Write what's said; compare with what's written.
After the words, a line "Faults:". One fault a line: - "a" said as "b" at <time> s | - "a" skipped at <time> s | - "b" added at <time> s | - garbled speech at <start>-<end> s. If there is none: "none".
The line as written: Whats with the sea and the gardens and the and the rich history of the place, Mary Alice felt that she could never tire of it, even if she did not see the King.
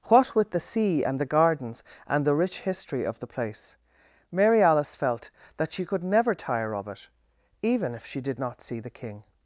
What with the sea and the gardens and the rich history of the place, Mary Alice felt that she could never tire of it, even if she did not see the King.
Faults:
- "Whats" said as "What" at 0.1 s
- "and the" skipped at 2.4 s